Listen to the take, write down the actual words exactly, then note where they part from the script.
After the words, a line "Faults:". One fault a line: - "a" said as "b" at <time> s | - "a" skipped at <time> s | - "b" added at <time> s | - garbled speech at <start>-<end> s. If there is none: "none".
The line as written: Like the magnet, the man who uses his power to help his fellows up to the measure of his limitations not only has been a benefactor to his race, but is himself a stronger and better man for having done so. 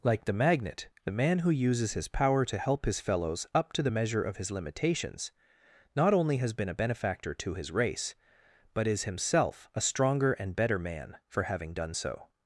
Like the magnet, the man who uses his power to help his fellows up to the measure of his limitations not only has been a benefactor to his race, but is himself a stronger and better man for having done so.
Faults:
none